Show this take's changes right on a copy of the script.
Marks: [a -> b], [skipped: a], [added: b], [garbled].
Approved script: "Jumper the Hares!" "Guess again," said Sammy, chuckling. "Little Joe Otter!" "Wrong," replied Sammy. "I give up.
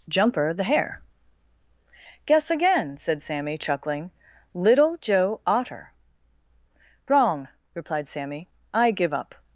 "Jumper the [Hares!" -> Hare] "Guess again," said Sammy, chuckling. "Little Joe Otter!" "Wrong," replied Sammy. "I give up.